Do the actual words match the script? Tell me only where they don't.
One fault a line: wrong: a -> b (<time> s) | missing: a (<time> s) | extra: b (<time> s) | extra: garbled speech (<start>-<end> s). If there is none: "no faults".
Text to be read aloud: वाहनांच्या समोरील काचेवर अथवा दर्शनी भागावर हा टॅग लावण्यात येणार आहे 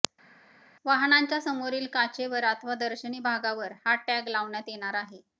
no faults